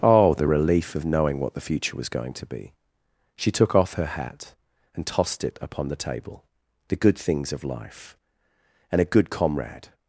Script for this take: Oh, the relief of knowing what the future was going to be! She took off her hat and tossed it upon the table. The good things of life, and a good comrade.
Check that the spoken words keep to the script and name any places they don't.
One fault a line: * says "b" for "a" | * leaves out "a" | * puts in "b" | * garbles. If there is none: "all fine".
all fine